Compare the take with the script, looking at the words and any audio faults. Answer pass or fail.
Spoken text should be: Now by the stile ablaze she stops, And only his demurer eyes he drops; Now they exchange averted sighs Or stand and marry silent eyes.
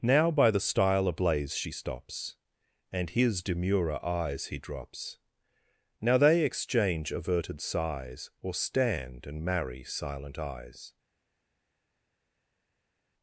fail